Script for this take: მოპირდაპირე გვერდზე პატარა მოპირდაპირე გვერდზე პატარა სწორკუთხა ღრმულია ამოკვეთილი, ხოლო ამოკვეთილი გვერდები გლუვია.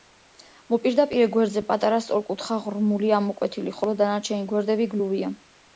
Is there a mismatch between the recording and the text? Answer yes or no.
yes